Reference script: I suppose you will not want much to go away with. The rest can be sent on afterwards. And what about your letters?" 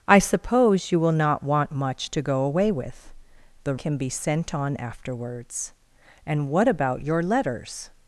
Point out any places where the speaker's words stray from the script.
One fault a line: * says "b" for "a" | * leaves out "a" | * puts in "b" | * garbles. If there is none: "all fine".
* leaves out "rest"